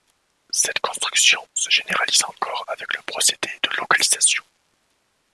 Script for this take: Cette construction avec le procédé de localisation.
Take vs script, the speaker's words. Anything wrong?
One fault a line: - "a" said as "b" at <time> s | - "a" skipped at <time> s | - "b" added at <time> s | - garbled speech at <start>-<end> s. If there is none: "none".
- "se généralise encore" added at 1.5 s